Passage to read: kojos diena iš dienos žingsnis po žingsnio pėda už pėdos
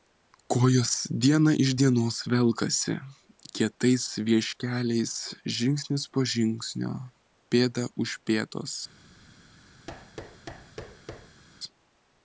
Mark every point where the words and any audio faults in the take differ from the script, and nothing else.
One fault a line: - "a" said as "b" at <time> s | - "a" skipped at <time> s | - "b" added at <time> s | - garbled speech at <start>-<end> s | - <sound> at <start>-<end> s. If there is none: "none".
- "velkasi kietais vieškeliais" added at 2.3 s
- thud at 9.9-11.4 s